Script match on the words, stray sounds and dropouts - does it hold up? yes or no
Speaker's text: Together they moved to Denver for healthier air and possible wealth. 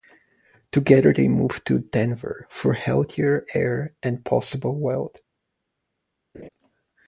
no